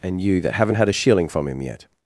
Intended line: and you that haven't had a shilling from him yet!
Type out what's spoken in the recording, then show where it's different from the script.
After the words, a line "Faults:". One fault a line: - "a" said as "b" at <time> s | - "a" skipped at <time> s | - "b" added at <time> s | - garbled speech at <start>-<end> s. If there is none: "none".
and you that haven't had a shilling from him yet!
Faults:
none